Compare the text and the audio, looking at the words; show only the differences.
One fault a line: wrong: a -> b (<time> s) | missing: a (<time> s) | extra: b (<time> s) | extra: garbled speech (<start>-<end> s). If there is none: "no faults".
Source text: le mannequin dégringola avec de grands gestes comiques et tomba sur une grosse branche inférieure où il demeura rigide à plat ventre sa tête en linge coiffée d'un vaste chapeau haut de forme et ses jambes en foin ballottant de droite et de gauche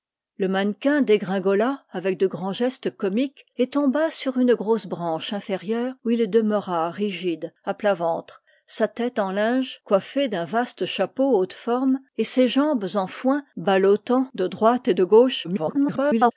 extra: garbled speech (15.4-16.3 s)